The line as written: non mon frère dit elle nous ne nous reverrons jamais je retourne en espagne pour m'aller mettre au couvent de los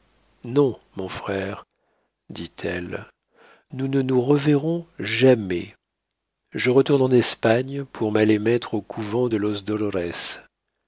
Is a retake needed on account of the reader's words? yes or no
no